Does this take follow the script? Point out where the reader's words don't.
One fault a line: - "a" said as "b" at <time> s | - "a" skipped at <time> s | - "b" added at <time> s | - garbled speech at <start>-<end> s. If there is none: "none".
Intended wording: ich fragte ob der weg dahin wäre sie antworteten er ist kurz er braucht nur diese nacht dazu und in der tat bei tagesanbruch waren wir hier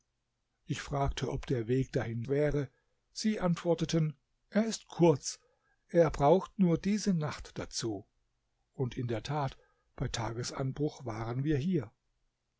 none